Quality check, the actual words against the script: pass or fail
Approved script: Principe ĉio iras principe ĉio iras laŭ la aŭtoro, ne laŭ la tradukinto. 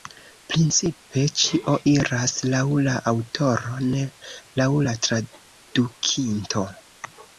fail